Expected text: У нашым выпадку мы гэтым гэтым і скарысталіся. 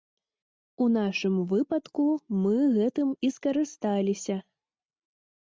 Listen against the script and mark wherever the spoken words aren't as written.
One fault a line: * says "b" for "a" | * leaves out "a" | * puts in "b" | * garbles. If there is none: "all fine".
* leaves out "гэтым"